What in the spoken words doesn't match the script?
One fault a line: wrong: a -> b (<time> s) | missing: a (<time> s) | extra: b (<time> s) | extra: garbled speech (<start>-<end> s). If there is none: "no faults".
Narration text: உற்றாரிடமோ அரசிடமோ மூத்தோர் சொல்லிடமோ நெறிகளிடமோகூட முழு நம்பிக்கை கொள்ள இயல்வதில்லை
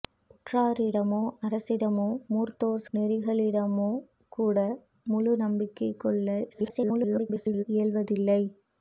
missing: சொல்லிடமோ (2.8 s)
extra: garbled speech (6.5-7.6 s)